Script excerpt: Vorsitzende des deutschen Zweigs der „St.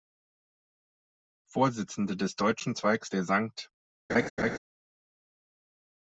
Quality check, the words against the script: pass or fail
pass